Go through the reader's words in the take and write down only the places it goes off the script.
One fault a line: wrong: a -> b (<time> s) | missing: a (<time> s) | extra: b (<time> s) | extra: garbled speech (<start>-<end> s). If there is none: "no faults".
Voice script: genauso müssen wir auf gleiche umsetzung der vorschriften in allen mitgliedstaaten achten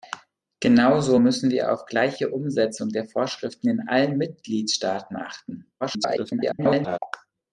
extra: garbled speech (5.8-7.0 s)